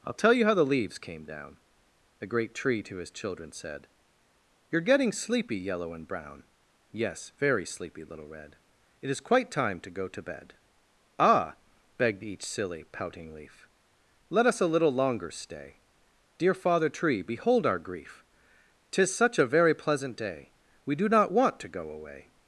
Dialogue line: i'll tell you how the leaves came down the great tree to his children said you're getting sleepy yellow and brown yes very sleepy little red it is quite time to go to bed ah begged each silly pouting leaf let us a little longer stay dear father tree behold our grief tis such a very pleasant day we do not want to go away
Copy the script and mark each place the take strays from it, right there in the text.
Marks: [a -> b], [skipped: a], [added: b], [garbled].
i'll tell you how the leaves came down the great tree to his children said you're getting sleepy yellow and brown yes very sleepy little red it is quite time to go to bed ah begged each silly pouting leaf let us a little longer stay dear father tree behold our grief tis such a very pleasant day we do not want to go away